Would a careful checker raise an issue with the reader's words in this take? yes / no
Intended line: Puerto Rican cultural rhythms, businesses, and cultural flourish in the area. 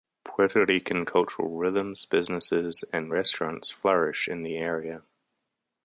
yes